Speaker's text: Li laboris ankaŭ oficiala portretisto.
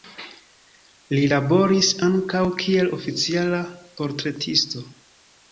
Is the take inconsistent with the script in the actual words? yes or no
yes